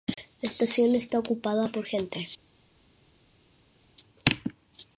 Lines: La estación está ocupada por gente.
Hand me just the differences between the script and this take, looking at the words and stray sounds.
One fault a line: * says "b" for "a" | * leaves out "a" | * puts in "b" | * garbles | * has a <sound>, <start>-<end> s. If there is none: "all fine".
all fine